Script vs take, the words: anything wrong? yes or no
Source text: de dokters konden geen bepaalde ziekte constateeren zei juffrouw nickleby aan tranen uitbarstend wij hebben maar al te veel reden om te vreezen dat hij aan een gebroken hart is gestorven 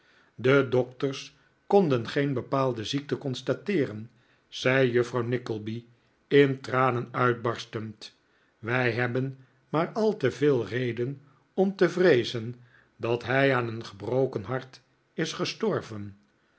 yes